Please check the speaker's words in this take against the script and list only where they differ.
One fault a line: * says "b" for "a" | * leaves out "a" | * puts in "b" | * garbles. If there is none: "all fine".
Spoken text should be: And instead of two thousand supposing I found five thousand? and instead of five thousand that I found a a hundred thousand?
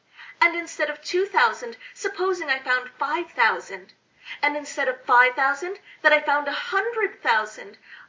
* leaves out "a"